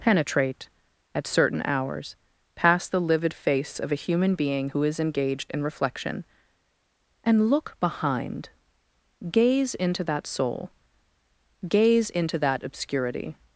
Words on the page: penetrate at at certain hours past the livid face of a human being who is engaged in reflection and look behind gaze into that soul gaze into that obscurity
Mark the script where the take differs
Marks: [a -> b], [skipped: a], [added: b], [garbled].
penetrate at [skipped: at] certain hours past the livid face of a human being who is engaged in reflection and look behind gaze into that soul gaze into that obscurity